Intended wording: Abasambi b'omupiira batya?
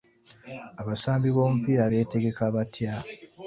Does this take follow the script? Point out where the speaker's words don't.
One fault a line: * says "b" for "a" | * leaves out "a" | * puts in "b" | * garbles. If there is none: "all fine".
* puts in "beetegeka"